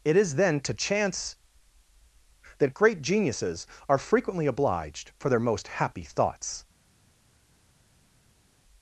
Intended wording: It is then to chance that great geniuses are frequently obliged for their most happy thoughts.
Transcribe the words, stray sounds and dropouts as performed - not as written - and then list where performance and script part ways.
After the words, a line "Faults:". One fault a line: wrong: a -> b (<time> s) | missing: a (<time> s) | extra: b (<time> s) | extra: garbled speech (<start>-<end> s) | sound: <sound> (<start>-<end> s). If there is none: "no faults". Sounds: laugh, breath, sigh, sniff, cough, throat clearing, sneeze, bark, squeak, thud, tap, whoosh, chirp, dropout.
It is then to chance that great geniuses are frequently obliged for their most happy thoughts.
Faults:
no faults